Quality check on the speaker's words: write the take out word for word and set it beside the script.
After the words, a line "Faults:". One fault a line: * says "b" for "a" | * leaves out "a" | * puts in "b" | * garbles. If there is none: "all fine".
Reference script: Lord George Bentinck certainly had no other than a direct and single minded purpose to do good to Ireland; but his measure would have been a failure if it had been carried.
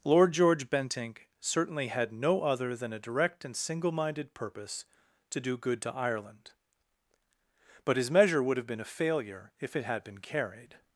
Lord George Bentinck certainly had no other than a direct and single minded purpose to do good to Ireland; but his measure would have been a failure if it had been carried.
Faults:
all fine